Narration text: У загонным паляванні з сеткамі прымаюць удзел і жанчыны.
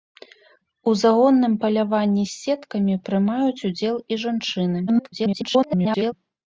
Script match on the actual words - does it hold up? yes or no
no